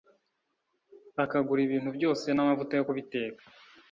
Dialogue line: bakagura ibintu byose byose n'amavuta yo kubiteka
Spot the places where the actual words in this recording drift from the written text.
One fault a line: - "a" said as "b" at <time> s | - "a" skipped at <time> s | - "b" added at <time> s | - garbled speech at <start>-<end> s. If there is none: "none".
- "byose" skipped at 2.2 s